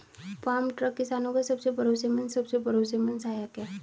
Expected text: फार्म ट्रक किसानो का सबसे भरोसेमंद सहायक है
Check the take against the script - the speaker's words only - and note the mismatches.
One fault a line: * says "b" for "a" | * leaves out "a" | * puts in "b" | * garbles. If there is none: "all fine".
* puts in "सबसे भरोसेमंद"